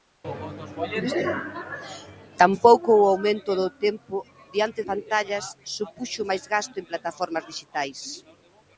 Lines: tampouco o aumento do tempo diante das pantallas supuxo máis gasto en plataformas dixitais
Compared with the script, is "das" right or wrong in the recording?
wrong